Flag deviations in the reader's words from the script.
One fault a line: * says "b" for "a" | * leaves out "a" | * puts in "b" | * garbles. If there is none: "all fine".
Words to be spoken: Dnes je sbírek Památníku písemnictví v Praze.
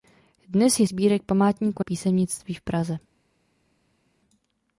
all fine